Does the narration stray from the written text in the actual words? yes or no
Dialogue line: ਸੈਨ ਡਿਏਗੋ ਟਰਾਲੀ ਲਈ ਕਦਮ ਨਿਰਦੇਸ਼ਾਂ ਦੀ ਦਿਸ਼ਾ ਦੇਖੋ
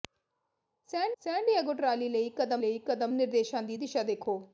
yes